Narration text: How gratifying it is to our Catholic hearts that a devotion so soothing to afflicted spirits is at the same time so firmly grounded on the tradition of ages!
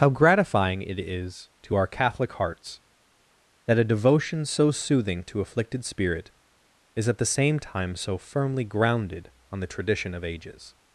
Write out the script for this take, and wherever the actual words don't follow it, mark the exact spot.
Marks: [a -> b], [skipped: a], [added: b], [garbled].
How gratifying it is to our Catholic hearts that a devotion so soothing to afflicted [spirits -> spirit] is at the same time so firmly grounded on the tradition of ages!